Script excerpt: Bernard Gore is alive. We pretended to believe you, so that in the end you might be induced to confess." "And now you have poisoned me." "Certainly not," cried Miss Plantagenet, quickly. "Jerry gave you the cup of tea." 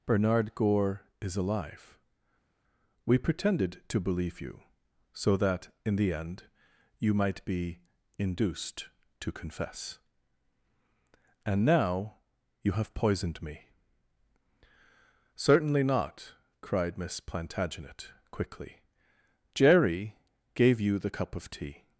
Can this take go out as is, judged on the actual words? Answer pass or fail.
pass